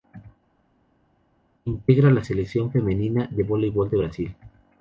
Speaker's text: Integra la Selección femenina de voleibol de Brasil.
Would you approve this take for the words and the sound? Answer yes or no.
yes